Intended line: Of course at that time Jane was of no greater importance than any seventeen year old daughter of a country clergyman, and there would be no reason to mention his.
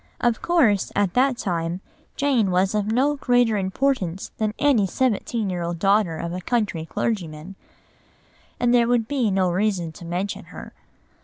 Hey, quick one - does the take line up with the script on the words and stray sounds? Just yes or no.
no